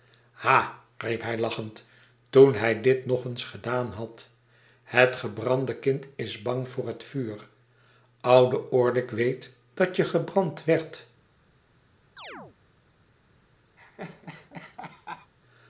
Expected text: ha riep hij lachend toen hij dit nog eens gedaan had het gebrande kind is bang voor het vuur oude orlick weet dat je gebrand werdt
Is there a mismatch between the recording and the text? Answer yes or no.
no